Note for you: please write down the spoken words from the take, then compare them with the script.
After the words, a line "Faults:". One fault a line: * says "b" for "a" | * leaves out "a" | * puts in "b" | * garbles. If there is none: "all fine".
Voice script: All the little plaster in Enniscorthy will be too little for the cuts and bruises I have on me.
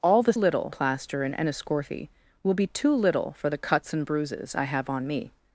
All the little plaster in Enniscorthy will be too little for the cuts and bruises I have on me.
Faults:
all fine